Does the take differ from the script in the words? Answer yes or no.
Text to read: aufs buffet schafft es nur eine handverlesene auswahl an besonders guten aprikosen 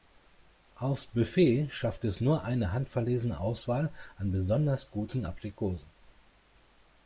no